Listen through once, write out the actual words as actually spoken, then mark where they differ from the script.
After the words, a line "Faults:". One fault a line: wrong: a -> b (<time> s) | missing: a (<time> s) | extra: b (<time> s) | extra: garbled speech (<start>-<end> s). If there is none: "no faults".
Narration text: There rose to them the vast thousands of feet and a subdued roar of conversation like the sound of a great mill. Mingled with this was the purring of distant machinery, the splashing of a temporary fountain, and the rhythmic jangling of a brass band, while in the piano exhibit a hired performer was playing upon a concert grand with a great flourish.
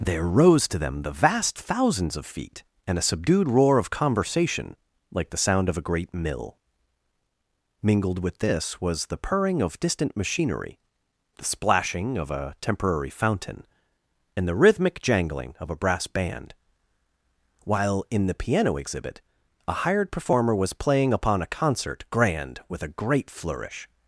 There rose to them the vast thousands of feet and a subdued roar of conversation like the sound of a great mill. Mingled with this was the purring of distant machinery, the splashing of a temporary fountain, and the rhythmic jangling of a brass band, while in the piano exhibit a hired performer was playing upon a concert grand with a great flourish.
Faults:
no faults